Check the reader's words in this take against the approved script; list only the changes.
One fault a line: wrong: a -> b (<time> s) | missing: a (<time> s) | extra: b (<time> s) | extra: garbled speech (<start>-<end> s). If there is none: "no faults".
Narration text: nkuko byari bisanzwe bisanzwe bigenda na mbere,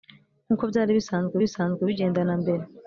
no faults